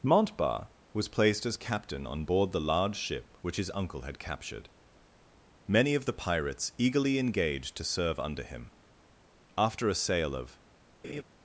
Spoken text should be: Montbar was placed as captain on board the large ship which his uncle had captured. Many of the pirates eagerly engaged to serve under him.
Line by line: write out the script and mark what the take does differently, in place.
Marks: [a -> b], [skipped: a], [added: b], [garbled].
Montbar was placed as captain on board the large ship which his uncle had captured. Many of the pirates eagerly engaged to serve under him. [added: After a sail of]